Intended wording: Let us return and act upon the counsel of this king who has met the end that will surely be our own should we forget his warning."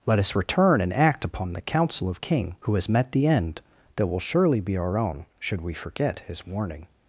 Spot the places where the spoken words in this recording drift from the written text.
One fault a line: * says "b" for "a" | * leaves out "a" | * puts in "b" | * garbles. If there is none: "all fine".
* leaves out "this"